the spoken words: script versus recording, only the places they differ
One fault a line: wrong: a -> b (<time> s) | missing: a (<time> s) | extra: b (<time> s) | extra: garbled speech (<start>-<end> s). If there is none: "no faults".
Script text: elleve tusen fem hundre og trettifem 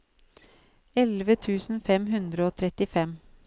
no faults